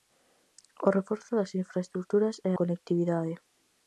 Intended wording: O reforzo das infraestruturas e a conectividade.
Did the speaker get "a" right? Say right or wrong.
wrong